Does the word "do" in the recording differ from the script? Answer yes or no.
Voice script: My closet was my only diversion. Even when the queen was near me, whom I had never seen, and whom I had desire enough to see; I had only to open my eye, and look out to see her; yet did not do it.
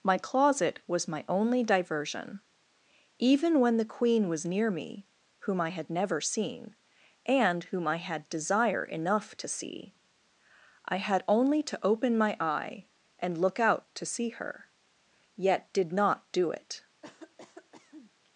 no